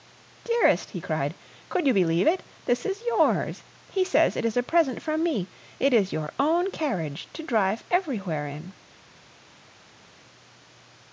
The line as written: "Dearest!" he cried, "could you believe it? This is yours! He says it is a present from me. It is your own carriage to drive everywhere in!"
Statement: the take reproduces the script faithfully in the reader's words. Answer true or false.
true